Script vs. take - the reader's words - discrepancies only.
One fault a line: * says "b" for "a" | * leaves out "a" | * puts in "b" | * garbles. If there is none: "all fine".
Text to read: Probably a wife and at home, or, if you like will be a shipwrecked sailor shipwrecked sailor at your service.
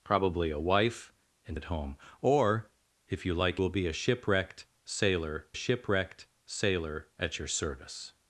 all fine